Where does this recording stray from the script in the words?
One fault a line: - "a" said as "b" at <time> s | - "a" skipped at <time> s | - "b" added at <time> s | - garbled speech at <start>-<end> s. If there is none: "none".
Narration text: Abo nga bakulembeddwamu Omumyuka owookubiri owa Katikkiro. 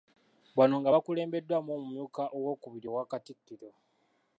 - "Abo" said as "Bano" at 0.6 s